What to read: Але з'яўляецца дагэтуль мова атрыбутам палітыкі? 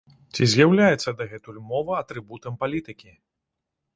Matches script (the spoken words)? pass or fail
fail